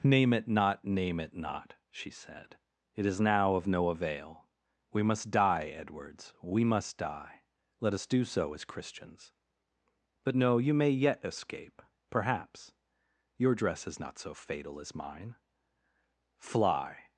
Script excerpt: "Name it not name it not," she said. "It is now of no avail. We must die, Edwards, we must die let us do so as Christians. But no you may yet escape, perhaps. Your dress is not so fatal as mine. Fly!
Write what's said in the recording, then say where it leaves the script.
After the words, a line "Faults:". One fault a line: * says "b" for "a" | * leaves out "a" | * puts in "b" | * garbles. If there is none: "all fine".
"Name it not name it not," she said. "It is now of no avail. We must die, Edwards, we must die let us do so as Christians. But no you may yet escape, perhaps. Your dress is not so fatal as mine. Fly!
Faults:
all fine